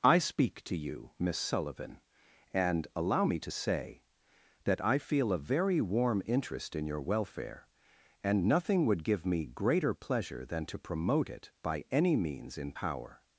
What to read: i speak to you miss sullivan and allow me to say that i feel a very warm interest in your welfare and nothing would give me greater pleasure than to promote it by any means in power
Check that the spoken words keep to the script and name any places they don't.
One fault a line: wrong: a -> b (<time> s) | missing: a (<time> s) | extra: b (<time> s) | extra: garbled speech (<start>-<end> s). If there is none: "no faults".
no faults